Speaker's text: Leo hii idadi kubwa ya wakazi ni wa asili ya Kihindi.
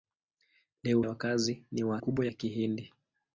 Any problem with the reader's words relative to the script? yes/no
yes